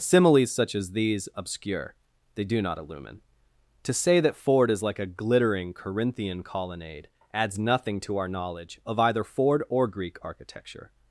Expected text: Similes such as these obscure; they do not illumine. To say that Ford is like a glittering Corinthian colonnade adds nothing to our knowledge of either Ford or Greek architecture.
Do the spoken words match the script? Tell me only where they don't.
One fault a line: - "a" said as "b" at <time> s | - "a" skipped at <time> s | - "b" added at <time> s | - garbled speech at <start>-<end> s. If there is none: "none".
none